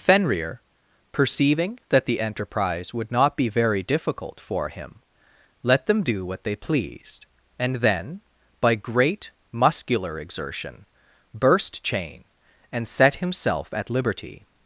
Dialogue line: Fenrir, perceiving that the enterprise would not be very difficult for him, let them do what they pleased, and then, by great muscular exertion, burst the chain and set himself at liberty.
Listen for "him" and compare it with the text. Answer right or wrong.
right